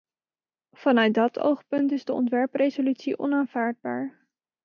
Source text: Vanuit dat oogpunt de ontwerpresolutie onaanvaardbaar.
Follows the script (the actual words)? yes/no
no